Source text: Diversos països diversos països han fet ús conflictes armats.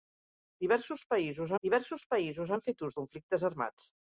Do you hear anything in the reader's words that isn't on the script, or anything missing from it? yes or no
no